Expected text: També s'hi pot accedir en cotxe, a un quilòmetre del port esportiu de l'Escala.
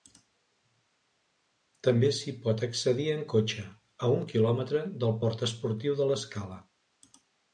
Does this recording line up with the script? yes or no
yes